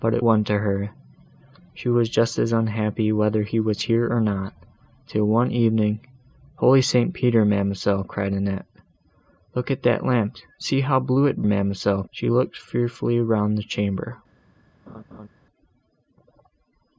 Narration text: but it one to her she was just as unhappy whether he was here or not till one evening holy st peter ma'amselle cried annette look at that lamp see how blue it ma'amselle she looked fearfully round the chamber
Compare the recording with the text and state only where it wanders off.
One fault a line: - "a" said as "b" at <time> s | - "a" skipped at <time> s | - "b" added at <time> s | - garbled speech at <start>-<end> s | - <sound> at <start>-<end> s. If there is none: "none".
- laugh at 14.9-15.3 s